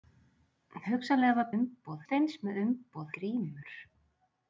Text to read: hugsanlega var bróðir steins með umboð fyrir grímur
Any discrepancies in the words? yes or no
yes